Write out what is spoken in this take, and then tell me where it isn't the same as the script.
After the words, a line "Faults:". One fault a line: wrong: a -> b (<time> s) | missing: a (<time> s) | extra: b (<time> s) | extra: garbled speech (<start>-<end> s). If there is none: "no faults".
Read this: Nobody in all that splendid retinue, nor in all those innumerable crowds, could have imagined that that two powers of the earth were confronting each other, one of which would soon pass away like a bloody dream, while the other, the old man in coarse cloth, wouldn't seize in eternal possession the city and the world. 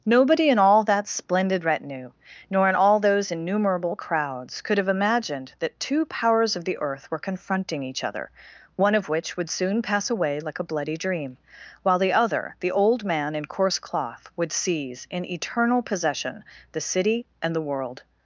Nobody in all that splendid retinue, nor in all those innumerable crowds, could have imagined that two powers of the earth were confronting each other, one of which would soon pass away like a bloody dream, while the other, the old man in coarse cloth, would seize in eternal possession the city and the world.
Faults:
missing: that (5.8 s)
wrong: wouldn't -> would (14.3 s)